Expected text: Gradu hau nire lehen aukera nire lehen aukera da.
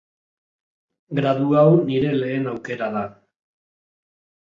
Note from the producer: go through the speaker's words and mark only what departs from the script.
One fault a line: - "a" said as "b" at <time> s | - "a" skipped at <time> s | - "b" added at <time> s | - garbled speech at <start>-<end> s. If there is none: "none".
- "nire lehen aukera" skipped at 2.9 s